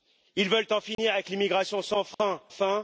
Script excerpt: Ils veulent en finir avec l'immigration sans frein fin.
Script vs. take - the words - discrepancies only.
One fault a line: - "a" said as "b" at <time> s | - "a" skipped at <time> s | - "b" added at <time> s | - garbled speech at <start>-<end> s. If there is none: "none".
none